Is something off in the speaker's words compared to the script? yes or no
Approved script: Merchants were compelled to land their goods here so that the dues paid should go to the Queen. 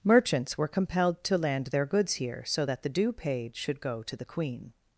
yes